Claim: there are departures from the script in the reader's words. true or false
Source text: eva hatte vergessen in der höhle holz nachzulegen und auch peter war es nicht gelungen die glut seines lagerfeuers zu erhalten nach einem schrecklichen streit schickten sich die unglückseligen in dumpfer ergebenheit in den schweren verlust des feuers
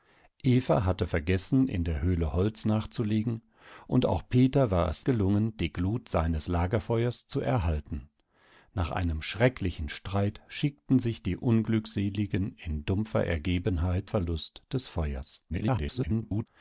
true